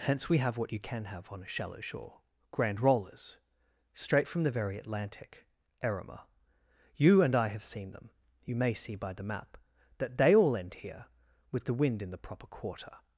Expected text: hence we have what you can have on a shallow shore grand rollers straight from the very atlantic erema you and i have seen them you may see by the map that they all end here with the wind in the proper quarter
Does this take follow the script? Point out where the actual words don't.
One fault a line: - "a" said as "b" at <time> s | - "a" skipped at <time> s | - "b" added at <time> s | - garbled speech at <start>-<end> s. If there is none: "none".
none